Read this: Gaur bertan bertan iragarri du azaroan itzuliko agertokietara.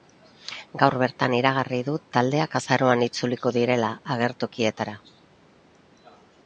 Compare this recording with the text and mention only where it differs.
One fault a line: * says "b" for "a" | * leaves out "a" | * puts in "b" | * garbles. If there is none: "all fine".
* leaves out "bertan"
* puts in "taldeak"
* puts in "direla"